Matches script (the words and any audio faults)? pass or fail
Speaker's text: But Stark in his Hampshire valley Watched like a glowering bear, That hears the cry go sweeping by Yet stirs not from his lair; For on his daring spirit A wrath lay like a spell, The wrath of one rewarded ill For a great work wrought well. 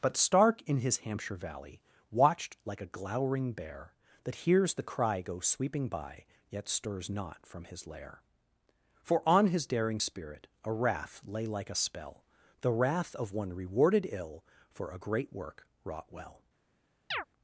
fail